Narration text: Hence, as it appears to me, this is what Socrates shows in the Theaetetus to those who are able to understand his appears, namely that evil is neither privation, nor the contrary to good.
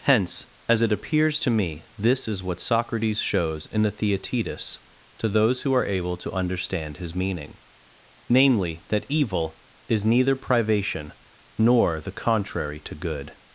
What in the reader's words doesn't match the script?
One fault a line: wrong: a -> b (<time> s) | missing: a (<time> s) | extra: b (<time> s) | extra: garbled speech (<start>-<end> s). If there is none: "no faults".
wrong: appears -> meaning (7.2 s)